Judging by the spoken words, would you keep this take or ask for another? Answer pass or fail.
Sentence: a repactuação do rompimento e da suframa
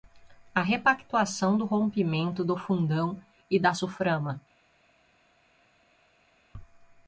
fail